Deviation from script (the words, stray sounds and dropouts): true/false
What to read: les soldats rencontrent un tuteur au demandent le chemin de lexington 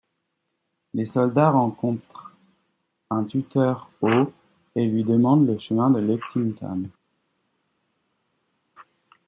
true